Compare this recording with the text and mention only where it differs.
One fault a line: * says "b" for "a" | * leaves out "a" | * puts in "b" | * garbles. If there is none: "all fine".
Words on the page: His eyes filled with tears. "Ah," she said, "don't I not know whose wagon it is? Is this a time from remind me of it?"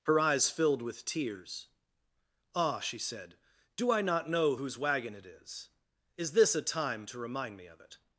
* says "Her" for "His"
* says "do" for "don't"
* says "to" for "from"